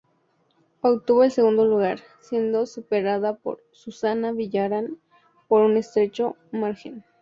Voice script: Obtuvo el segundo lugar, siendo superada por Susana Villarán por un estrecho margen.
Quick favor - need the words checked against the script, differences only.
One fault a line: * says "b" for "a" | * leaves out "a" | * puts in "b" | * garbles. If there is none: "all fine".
all fine